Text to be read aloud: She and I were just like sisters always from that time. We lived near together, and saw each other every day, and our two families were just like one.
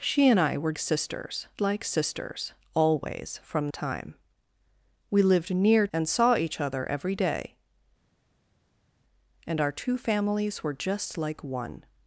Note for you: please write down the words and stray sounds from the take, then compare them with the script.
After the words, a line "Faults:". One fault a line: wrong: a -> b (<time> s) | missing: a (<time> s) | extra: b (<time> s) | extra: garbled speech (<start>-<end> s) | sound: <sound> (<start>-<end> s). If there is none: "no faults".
She and I were sisters like sisters always from time. We lived near and saw each other every day, and our two families were just like one.
Faults:
wrong: just -> sisters (0.8 s)
missing: that (3.7 s)
missing: together (5.9 s)